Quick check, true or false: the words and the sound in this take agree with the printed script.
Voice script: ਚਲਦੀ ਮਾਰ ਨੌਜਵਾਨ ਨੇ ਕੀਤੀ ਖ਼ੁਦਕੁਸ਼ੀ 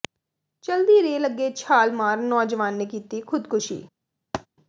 false